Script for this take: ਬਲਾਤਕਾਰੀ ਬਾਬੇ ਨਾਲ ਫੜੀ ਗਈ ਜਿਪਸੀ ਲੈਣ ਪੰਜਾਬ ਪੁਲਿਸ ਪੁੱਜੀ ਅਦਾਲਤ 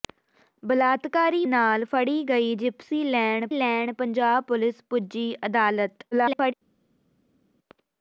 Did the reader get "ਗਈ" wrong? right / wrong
right